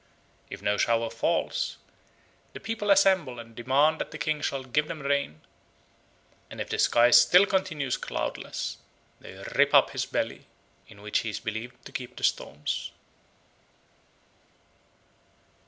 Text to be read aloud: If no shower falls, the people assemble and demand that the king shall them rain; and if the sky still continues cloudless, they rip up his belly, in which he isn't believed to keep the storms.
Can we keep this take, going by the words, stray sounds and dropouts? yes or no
no